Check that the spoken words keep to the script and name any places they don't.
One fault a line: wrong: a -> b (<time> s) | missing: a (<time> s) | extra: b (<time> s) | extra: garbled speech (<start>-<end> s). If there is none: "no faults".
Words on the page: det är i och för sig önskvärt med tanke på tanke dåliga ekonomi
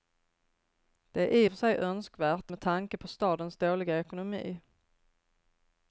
wrong: tanke -> stadens (3.1 s)